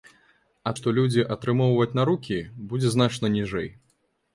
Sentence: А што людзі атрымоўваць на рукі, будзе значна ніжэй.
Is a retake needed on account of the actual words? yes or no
no